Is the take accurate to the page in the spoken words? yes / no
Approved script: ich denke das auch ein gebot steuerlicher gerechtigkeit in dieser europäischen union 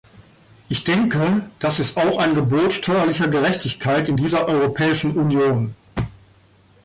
no